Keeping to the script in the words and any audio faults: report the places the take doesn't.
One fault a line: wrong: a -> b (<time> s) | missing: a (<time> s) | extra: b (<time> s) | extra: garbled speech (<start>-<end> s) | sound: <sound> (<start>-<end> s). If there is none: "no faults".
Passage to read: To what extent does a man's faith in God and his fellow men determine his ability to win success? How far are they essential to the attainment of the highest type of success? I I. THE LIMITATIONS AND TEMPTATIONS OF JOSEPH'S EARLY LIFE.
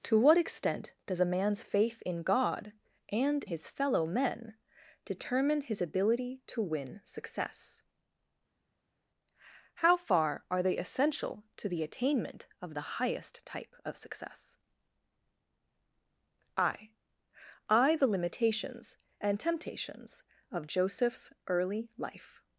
no faults